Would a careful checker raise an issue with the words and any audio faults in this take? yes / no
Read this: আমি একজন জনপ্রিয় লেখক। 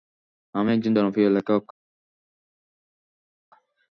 no